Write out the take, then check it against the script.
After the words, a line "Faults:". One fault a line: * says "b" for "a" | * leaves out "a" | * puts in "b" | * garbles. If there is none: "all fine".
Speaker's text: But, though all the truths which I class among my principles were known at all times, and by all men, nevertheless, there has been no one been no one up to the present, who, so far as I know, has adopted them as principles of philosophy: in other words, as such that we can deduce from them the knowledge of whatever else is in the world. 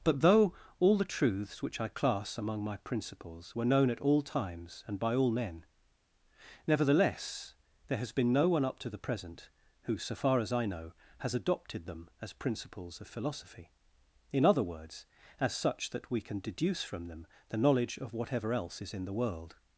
But, though all the truths which I class among my principles were known at all times, and by all men, nevertheless, there has been no one up to the present, who, so far as I know, has adopted them as principles of philosophy: in other words, as such that we can deduce from them the knowledge of whatever else is in the world.
Faults:
* leaves out "been no one"